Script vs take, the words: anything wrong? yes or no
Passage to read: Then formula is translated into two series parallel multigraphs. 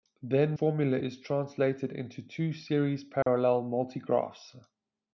no